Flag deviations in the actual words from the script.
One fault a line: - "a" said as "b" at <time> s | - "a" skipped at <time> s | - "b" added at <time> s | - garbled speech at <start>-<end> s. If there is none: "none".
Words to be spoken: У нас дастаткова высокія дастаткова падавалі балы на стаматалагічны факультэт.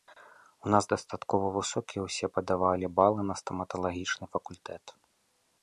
- "дастаткова" said as "ўсе" at 2.1 s